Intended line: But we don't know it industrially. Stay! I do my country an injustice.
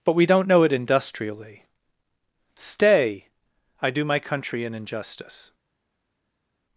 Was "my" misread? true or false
false